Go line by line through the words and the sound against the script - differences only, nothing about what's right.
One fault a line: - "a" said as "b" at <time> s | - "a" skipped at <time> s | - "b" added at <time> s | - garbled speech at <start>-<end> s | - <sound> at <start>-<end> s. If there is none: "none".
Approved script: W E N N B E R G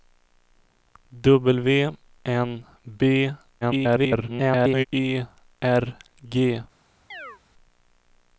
- "E N" skipped at 1.9 s
- garbled speech at 3.6-4.8 s
- chirp at 7.1-7.4 s